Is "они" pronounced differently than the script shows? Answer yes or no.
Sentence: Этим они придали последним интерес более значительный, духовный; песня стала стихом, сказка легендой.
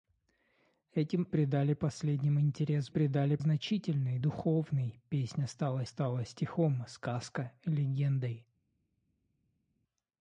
yes